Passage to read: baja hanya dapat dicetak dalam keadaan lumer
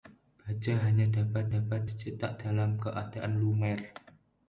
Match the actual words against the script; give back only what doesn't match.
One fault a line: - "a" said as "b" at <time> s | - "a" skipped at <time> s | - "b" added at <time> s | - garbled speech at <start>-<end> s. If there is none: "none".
- "dapat" added at 1.6 s